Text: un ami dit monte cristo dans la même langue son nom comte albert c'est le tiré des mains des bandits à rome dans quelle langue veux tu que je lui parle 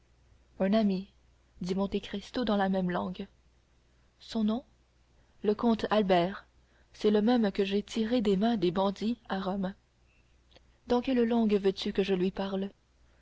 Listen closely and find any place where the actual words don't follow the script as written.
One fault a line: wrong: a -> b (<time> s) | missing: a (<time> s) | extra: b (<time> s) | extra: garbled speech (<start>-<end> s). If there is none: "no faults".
extra: le (5.4 s)
extra: même que j'ai (7.2 s)